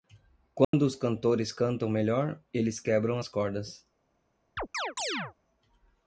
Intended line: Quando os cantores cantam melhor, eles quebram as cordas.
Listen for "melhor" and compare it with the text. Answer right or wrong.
right